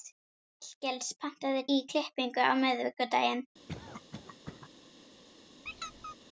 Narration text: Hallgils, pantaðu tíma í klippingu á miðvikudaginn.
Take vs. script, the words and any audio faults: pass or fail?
fail